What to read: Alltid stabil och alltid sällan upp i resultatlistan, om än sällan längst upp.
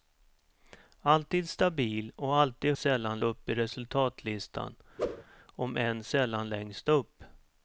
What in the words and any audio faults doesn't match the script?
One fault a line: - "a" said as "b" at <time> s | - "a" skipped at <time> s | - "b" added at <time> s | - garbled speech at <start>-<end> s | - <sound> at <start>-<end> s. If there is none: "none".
- whoosh at 5.0-5.2 s